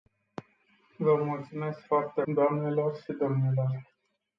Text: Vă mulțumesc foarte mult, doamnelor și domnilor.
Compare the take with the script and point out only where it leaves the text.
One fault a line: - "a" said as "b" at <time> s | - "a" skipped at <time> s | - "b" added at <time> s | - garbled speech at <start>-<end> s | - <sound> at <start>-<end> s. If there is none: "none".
- "mult" skipped at 2.2 s